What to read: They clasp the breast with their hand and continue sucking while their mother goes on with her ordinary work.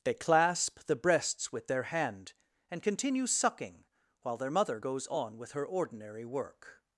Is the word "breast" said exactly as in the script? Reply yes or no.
no